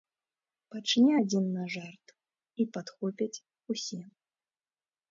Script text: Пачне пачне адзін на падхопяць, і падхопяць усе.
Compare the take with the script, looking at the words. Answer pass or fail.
fail